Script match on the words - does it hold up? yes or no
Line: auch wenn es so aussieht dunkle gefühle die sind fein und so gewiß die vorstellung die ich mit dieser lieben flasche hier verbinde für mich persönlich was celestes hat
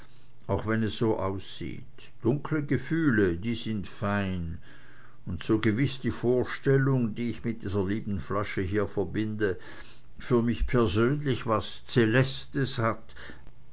yes